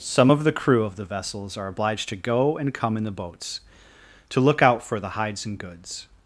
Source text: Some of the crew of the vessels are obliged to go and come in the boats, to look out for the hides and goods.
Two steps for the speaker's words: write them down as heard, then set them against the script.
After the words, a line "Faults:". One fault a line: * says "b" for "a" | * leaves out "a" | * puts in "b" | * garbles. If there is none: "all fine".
Some of the crew of the vessels are obliged to go and come in the boats, to look out for the hides and goods.
Faults:
all fine